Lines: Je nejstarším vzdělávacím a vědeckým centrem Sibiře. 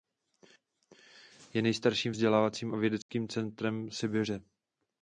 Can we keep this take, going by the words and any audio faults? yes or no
no